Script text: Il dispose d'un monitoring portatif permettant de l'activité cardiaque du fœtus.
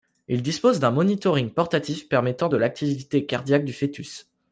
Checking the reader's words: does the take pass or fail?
pass